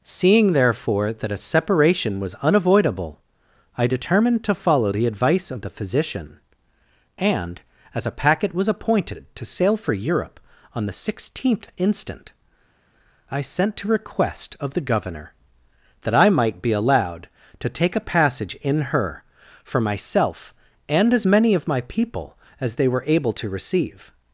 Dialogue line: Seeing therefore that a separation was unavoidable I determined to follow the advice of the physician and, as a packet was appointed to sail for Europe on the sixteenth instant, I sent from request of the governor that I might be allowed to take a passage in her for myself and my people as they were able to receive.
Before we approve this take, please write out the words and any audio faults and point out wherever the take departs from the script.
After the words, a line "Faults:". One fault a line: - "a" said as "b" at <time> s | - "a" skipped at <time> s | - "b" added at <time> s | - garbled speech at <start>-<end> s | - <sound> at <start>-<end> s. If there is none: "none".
Seeing therefore that a separation was unavoidable I determined to follow the advice of the physician and, as a packet was appointed to sail for Europe on the sixteenth instant, I sent to request of the governor that I might be allowed to take a passage in her for myself and as many of my people as they were able to receive.
Faults:
- "from" said as "to" at 13.8 s
- "as many of" added at 21.1 s